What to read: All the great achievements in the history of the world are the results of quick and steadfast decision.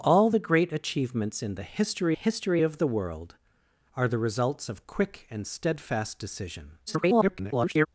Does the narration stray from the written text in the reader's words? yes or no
yes